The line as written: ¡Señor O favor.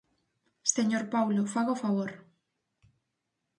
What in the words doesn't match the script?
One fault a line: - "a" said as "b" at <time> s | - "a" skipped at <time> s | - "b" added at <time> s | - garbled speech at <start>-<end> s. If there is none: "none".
- "Paulo faga" added at 1.1 s